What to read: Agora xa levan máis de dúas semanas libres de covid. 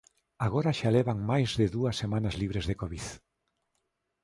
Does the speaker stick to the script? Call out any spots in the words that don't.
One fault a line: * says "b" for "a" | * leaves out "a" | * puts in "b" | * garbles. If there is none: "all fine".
all fine